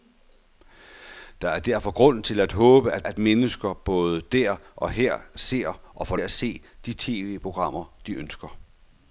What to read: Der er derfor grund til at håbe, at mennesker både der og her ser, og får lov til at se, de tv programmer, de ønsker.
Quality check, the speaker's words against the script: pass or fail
fail